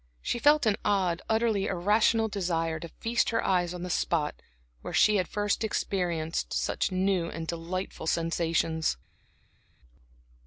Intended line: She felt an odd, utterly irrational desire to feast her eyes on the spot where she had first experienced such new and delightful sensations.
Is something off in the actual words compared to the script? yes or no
no